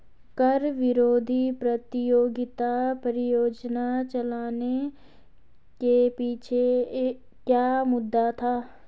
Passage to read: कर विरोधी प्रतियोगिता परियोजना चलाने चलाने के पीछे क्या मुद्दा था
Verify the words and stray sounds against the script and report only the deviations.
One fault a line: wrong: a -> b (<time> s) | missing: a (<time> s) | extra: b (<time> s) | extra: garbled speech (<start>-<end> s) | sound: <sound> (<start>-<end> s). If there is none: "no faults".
missing: चलाने (4.9 s)